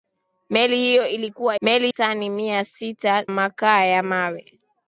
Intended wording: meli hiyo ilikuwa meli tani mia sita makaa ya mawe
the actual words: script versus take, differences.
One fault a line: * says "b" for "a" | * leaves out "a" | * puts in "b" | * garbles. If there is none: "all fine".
all fine